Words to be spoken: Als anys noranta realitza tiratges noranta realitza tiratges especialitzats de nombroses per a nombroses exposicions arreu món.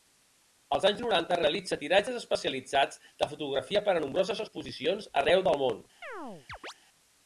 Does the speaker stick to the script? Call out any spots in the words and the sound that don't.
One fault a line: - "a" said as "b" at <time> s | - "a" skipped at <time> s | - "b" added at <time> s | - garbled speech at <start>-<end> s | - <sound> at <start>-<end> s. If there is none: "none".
- "noranta realitza tiratges" skipped at 2.2 s
- "nombroses" said as "fotografia" at 3.4 s
- "del" added at 5.5 s
- chirp at 6.0-6.7 s